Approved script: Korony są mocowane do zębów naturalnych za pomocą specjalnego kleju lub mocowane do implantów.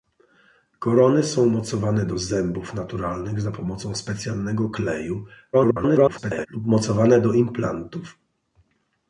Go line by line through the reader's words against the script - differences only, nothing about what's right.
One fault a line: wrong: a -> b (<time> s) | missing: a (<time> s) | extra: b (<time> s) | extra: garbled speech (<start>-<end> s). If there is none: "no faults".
extra: garbled speech (5.5-6.5 s)